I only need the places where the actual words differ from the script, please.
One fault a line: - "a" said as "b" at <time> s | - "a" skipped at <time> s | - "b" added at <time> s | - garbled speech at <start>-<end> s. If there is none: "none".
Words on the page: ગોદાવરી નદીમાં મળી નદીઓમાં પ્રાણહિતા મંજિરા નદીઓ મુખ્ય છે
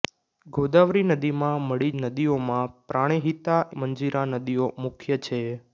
none